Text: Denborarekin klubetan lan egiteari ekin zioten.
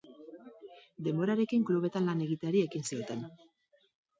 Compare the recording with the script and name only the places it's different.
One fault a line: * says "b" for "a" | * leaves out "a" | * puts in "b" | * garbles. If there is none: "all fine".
all fine